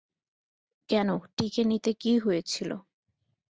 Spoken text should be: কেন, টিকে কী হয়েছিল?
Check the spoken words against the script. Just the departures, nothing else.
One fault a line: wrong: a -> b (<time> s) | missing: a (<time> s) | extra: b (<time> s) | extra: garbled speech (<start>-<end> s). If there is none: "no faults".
extra: নিতে (1.6 s)